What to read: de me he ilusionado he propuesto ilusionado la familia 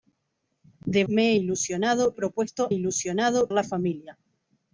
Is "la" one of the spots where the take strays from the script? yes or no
no